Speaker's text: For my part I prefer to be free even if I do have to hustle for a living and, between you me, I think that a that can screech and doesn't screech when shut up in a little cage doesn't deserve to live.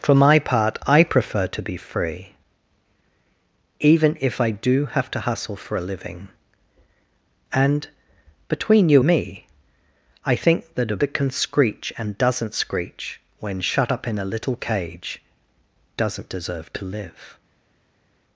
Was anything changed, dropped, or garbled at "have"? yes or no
no